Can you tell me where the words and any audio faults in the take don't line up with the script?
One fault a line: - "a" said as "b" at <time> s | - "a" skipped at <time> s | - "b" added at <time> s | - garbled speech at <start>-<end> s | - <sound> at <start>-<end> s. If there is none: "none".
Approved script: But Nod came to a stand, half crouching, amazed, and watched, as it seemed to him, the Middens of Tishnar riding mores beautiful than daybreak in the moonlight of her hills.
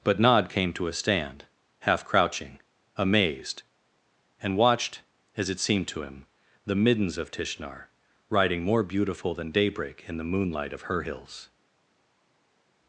- "mores" said as "more" at 8.6 s